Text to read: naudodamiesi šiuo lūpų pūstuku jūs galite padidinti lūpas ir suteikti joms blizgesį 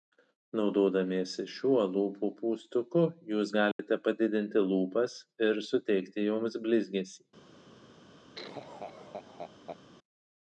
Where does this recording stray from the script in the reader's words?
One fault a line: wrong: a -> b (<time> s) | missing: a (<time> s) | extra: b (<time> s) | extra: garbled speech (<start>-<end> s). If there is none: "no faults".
no faults